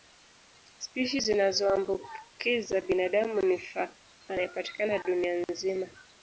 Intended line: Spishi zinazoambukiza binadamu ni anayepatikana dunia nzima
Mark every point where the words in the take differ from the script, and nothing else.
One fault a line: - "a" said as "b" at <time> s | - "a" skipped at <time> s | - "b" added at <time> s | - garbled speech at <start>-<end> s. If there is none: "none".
none